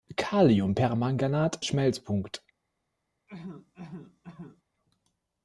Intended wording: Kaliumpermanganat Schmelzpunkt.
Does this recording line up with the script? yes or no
yes